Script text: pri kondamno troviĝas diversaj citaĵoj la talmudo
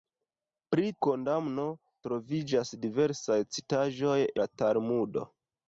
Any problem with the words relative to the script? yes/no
no